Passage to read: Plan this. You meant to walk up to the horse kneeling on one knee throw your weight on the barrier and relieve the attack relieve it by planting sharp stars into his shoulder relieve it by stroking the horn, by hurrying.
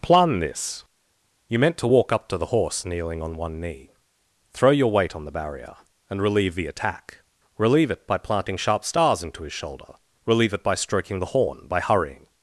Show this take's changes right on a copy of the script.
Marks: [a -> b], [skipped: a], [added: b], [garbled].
Plan this. You meant to walk up to the horse kneeling on one knee throw your weight on the barrier and relieve the attack relieve it by planting sharp stars into his shoulder relieve it by stroking the horn, by hurrying.